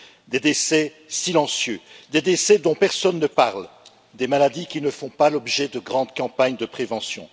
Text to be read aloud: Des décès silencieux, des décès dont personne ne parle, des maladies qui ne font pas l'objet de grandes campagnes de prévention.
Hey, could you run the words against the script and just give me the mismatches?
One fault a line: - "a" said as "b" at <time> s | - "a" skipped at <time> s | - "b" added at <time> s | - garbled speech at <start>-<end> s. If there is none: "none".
none